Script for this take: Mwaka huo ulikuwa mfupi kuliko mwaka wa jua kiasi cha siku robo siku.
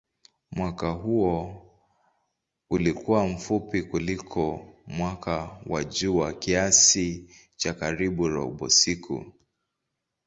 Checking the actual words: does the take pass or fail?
fail